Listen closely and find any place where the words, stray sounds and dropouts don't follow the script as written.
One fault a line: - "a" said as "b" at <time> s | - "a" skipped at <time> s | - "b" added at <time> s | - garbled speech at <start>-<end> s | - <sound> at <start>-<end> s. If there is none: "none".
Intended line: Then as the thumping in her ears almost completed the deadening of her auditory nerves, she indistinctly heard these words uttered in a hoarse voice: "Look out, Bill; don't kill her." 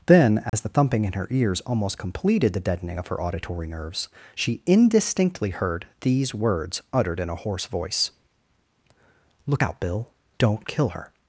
- dropout at 0.5-0.5 s